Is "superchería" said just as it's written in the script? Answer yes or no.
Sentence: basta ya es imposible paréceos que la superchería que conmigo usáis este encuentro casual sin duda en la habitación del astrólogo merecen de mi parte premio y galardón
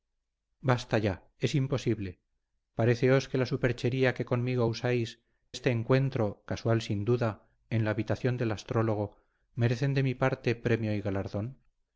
yes